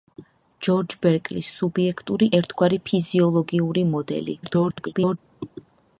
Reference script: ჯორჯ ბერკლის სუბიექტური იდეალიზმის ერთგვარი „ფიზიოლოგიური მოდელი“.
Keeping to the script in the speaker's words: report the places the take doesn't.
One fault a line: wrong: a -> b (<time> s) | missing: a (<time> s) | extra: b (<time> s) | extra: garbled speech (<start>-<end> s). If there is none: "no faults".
missing: იდეალიზმის (2.3 s)
extra: garbled speech (4.4-5.2 s)